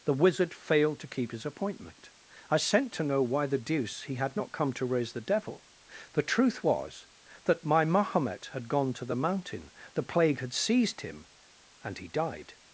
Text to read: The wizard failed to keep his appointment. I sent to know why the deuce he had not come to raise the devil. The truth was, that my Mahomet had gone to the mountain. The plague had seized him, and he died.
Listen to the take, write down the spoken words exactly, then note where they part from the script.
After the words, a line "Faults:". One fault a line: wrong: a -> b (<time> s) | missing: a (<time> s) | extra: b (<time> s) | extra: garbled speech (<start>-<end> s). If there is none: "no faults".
The wizard failed to keep his appointment. I sent to know why the deuce he had not come to raise the devil. The truth was, that my Mahomet had gone to the mountain. The plague had seized him, and he died.
Faults:
no faults